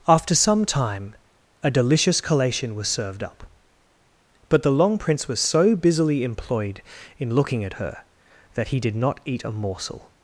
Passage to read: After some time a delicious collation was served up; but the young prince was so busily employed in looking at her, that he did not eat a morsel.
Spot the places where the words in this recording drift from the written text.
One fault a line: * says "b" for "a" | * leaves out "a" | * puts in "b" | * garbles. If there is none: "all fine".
* says "long" for "young"